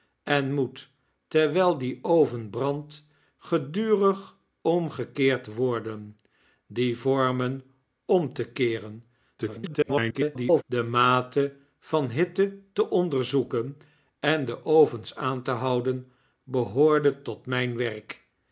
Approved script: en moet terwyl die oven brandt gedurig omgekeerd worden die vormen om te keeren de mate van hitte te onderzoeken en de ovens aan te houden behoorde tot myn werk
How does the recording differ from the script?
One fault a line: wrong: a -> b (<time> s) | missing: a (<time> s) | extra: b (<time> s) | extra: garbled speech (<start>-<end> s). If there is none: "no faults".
extra: garbled speech (9.4-10.6 s)